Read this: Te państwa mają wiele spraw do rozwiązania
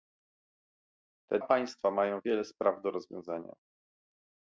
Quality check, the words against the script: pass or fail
pass